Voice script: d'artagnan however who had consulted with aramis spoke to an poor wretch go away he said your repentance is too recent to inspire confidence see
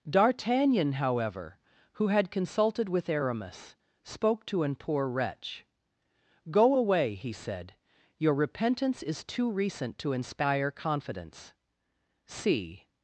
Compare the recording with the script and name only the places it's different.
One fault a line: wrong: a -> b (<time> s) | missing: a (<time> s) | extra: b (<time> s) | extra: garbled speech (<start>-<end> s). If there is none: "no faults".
no faults